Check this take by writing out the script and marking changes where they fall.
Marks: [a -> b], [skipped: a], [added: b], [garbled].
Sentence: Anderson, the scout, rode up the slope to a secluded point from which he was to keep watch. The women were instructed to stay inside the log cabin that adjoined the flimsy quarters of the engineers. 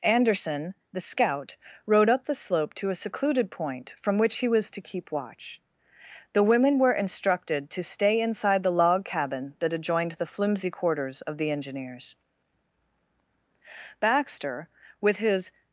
Anderson, the scout, rode up the slope to a secluded point from which he was to keep watch. The women were instructed to stay inside the log cabin that adjoined the flimsy quarters of the engineers. [added: Baxter with his]